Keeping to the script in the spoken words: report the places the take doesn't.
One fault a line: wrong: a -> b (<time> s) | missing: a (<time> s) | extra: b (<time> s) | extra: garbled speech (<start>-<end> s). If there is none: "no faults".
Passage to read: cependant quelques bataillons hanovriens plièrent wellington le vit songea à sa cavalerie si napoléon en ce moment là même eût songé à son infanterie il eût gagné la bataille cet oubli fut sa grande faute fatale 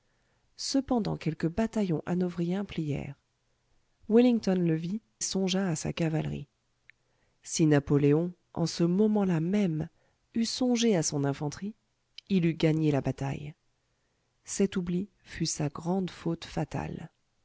no faults